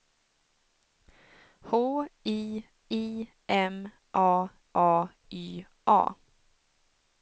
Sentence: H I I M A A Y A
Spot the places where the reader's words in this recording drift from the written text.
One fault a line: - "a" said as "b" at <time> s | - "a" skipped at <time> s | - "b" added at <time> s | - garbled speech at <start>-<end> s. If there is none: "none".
none